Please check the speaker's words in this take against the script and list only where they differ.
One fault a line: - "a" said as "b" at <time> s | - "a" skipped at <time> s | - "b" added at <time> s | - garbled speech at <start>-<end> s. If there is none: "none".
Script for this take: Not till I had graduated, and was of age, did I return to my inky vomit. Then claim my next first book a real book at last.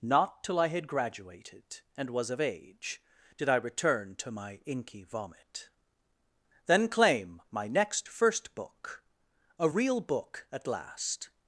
none